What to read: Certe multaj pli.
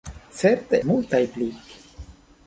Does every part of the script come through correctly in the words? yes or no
yes